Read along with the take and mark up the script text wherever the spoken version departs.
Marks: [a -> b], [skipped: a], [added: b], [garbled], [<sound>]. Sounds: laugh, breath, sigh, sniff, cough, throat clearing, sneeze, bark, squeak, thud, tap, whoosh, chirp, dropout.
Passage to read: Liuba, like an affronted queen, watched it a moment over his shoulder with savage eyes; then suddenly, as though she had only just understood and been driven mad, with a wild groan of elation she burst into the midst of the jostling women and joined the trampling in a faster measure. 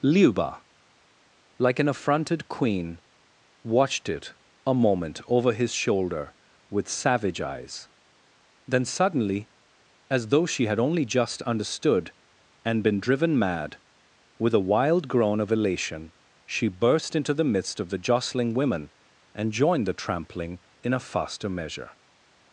Liuba, like an affronted queen, watched it a moment over his shoulder with savage eyes; then suddenly, as though she had only just understood and been driven mad, with a wild groan of elation she burst into the midst of the jostling women and joined the trampling in a faster measure.